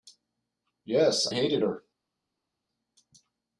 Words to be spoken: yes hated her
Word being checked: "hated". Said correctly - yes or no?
yes